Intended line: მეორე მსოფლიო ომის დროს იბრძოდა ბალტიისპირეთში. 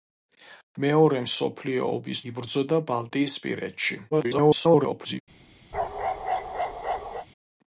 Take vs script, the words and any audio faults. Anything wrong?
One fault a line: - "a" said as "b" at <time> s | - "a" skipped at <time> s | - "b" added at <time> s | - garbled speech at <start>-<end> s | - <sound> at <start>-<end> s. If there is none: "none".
- "დროს" skipped at 2.2 s
- garbled speech at 4.1-5.2 s
- bark at 5.7-7.3 s